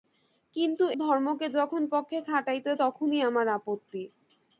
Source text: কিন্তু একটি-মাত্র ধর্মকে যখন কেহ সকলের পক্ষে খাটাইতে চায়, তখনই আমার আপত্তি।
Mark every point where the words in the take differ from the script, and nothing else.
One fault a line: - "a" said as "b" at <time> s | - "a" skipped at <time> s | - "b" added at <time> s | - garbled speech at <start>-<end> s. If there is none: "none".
- "একটি-মাত্র" skipped at 0.8 s
- "কেহ সকলের" skipped at 1.8 s
- "চায়" skipped at 2.7 s